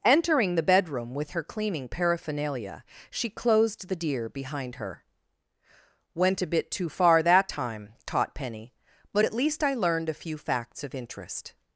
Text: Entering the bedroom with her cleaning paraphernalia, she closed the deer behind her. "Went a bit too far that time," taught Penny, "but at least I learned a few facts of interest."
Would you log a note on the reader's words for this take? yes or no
no